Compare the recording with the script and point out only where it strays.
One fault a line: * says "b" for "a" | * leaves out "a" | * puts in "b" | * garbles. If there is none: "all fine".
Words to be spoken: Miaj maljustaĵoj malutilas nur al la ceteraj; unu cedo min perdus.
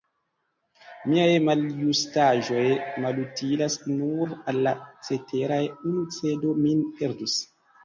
all fine